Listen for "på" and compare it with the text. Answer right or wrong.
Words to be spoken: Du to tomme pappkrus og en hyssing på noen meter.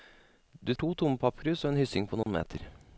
right